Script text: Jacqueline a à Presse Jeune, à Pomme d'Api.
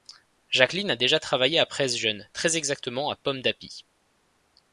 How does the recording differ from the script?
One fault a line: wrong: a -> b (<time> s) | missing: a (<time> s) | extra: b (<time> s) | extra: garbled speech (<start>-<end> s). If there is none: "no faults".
extra: déjà travaillé (0.9 s)
extra: très exactement (2.3 s)